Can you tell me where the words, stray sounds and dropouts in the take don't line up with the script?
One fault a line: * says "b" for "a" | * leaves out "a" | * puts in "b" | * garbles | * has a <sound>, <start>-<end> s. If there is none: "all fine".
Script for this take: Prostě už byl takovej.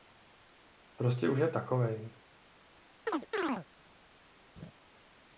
* says "je" for "byl"
* has a chirp, 3.1-3.7 s
* has a laugh, 4.6-4.7 s